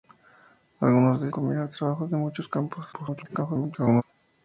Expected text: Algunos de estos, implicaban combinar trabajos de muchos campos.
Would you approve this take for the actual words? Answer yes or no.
no